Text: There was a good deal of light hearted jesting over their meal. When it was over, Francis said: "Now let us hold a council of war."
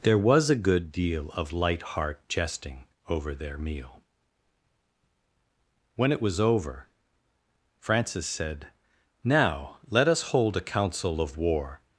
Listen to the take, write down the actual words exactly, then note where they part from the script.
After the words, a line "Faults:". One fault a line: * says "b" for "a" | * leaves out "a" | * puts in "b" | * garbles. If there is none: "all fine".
There was a good deal of light heart jesting over their meal. When it was over, Francis said: "Now let us hold a council of war."
Faults:
* says "heart" for "hearted"